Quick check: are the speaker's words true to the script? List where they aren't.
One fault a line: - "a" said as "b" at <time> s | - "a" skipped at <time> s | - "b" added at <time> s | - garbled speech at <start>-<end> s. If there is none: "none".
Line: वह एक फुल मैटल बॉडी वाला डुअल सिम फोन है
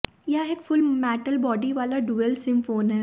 - "वह" said as "यह" at 0.3 s